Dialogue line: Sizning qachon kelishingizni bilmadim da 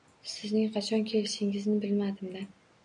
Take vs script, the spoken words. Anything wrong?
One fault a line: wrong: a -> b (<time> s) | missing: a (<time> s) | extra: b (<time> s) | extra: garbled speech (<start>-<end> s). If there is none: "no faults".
no faults